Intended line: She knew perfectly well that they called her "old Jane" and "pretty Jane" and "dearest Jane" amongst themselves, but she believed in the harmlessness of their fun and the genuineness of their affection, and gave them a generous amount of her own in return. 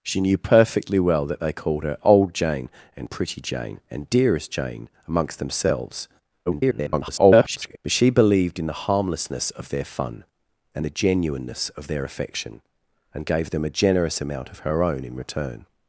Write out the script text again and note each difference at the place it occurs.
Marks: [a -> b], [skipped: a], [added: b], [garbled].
She knew perfectly well that they called her "old Jane" and "pretty Jane" and "dearest Jane" amongst themselves, [garbled] but she believed in the harmlessness of their fun and the genuineness of their affection, and gave them a generous amount of her own in return.